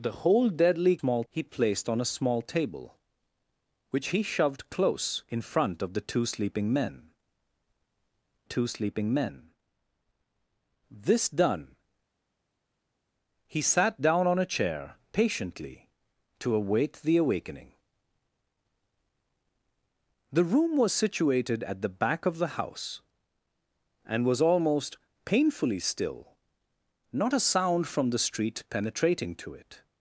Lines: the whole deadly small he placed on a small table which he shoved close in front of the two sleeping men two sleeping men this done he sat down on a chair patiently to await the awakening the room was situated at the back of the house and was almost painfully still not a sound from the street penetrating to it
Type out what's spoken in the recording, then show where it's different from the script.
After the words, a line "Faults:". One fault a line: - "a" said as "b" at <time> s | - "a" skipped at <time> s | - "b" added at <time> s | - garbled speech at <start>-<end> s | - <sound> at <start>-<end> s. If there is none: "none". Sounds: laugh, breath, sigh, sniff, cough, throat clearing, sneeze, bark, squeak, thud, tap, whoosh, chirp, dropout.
the whole deadly small he placed on a small table which he shoved close in front of the two sleeping men two sleeping men this done he sat down on a chair patiently to await the awakening the room was situated at the back of the house and was almost painfully still not a sound from the street penetrating to it
Faults:
none